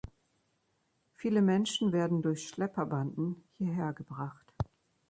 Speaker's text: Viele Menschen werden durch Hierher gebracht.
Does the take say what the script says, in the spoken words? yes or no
no